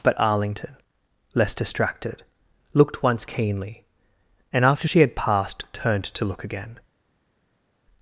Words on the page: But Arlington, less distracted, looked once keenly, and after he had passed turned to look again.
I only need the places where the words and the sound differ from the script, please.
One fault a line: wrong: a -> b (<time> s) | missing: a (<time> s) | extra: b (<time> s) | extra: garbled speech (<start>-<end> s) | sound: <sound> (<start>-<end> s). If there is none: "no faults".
wrong: he -> she (4.8 s)